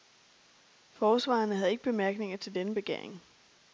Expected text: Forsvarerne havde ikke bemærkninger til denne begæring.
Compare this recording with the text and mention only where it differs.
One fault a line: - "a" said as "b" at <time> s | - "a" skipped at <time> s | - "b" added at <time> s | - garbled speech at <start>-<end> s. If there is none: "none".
none